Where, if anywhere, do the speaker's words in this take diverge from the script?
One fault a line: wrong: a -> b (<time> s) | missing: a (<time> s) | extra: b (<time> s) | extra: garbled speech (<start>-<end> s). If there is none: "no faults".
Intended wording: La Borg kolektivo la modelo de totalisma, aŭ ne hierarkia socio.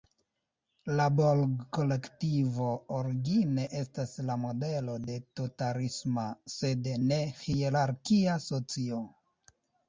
extra: origine estas (3.0 s)
wrong: aŭ -> sed (6.6 s)